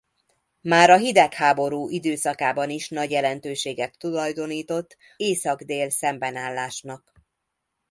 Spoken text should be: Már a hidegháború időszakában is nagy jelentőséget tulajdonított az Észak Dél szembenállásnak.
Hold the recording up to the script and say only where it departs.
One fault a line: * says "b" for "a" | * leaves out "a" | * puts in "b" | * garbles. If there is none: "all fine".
* leaves out "az"